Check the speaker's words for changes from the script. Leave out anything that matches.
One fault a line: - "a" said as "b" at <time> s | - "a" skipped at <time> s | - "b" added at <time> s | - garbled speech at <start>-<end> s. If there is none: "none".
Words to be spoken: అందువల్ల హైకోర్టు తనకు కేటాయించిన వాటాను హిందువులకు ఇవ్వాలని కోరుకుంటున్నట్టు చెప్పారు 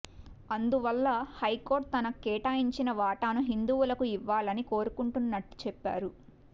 none